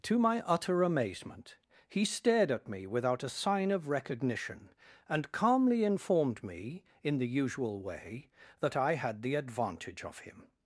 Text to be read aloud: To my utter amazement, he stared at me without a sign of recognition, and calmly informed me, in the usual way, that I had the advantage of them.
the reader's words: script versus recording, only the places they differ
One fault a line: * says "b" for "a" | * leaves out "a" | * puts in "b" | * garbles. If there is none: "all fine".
* says "him" for "them"